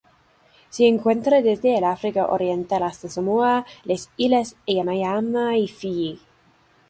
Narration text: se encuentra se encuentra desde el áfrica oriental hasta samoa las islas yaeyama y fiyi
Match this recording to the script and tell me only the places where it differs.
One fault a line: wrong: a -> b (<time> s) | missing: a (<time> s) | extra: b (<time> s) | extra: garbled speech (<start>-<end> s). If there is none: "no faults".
missing: se encuentra (1.4 s)